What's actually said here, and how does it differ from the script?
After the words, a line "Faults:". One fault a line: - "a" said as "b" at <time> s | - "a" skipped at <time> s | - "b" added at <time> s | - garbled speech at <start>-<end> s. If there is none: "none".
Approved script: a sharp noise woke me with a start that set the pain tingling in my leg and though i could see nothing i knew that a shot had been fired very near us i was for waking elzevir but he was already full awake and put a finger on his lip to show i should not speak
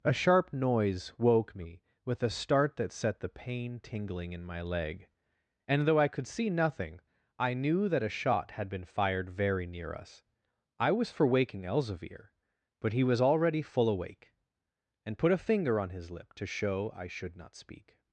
a sharp noise woke me with a start that set the pain tingling in my leg and though i could see nothing i knew that a shot had been fired very near us i was for waking elzevir but he was already full awake and put a finger on his lip to show i should not speak
Faults:
none